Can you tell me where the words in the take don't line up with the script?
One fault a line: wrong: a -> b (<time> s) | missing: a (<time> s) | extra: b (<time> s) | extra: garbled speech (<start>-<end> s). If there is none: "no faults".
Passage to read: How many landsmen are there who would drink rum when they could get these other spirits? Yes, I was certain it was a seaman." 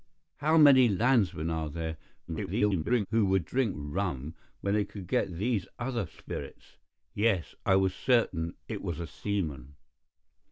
extra: garbled speech (2.3-3.1 s)